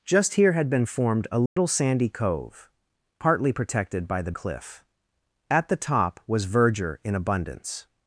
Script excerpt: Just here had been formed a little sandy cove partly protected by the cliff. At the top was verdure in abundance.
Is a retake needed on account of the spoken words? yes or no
no